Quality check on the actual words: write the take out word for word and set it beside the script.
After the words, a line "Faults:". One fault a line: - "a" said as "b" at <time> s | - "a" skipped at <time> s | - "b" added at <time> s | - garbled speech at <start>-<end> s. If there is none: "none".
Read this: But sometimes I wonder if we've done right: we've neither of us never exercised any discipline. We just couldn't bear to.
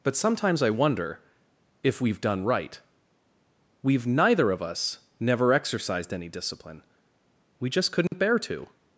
But sometimes I wonder if we've done right: we've neither of us never exercised any discipline. We just couldn't bear to.
Faults:
none